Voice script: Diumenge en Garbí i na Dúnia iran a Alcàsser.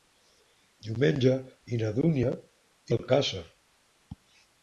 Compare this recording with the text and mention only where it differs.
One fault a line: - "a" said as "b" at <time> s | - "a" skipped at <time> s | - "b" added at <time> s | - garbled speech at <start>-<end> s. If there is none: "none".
- "en Garbí" skipped at 1.3 s
- "iran" skipped at 2.3 s